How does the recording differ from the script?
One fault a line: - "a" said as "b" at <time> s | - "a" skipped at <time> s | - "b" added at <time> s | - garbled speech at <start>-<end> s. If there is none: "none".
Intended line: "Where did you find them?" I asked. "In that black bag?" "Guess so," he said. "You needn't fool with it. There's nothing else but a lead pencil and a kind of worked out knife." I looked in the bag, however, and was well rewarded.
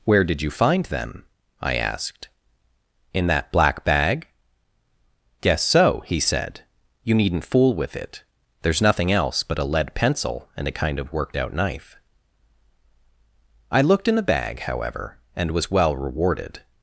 none